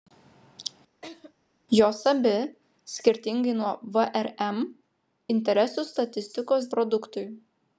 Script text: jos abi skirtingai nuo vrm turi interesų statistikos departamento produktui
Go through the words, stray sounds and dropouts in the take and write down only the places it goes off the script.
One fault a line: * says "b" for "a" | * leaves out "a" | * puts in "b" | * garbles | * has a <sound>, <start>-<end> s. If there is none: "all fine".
* has a laugh, 1.0-1.3 s
* leaves out "turi"
* leaves out "departamento"